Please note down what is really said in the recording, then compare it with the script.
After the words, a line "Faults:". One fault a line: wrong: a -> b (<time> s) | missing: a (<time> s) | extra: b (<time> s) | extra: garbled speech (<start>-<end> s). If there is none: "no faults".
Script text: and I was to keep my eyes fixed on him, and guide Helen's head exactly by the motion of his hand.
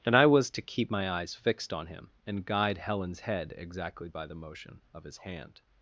and I was to keep my eyes fixed on him, and guide Helen's head exactly by the motion of his hand.
Faults:
no faults